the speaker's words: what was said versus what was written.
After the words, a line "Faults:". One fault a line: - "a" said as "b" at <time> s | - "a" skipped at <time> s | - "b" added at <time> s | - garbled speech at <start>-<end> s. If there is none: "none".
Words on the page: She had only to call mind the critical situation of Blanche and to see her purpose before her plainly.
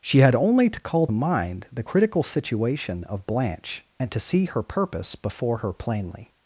She had only to call mind the critical situation of Blanche and to see her purpose before her plainly.
Faults:
none